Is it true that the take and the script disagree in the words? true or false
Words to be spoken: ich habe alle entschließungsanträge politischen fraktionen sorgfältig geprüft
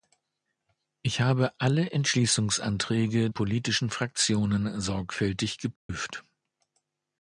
false